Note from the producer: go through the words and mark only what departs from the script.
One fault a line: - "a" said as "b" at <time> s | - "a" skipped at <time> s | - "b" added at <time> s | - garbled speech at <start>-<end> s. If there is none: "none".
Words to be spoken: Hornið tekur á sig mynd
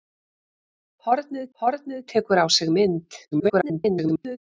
- "hornið" added at 1.6 s
- garbled speech at 3.3-4.4 s